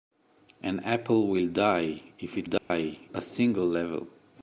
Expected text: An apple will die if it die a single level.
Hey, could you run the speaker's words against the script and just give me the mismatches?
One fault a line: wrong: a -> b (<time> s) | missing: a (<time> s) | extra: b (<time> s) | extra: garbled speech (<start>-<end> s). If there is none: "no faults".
no faults